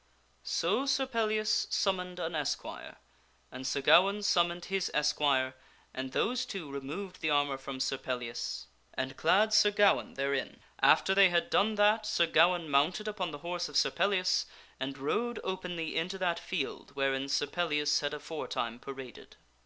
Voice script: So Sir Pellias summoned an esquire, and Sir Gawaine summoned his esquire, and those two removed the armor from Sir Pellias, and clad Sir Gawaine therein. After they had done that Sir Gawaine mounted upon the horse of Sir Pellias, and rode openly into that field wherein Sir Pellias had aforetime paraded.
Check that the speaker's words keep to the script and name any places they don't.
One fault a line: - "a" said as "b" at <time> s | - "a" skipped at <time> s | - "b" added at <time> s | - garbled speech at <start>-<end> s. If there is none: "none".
none